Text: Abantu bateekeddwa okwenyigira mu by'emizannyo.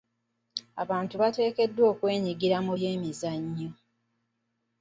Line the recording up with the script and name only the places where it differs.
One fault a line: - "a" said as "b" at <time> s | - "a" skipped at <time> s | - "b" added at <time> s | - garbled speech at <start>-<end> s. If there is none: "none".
none